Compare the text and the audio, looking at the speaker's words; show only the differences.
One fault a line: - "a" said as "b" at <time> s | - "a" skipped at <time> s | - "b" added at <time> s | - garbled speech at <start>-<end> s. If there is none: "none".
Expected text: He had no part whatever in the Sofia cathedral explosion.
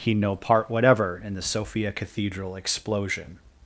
- "had" skipped at 0.1 s